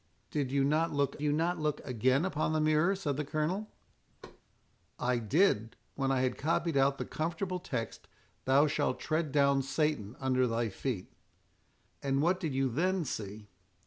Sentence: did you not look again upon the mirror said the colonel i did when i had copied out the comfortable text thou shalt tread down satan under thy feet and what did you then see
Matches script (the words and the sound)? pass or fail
fail